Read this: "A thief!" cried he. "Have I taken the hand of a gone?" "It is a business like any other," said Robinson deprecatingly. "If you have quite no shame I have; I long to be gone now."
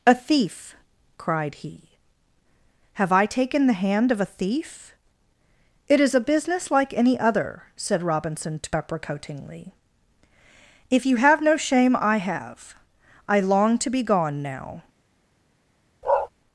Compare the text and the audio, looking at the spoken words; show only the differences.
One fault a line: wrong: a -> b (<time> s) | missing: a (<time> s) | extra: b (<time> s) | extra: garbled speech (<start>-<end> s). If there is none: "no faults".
wrong: gone -> thief (4.2 s)
missing: quite (11.4 s)